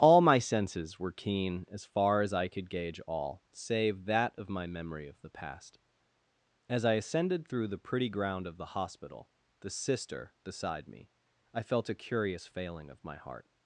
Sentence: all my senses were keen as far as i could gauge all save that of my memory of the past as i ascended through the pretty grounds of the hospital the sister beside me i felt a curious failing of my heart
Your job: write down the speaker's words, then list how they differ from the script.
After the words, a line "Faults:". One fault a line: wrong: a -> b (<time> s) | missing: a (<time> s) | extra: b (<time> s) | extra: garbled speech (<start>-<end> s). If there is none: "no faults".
all my senses were keen as far as i could gauge all save that of my memory of the past as i ascended through the pretty ground of the hospital the sister beside me i felt a curious failing of my heart
Faults:
wrong: grounds -> ground (8.1 s)